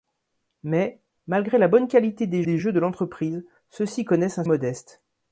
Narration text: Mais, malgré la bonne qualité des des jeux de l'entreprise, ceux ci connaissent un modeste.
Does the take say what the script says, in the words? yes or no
yes